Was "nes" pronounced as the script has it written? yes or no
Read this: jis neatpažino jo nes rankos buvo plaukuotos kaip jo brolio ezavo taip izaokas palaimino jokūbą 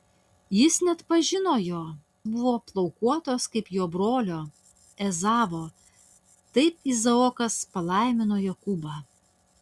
no